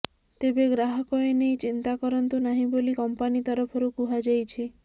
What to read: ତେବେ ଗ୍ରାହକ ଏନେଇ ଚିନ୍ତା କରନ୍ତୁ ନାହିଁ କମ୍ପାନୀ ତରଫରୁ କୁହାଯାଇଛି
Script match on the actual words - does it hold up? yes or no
no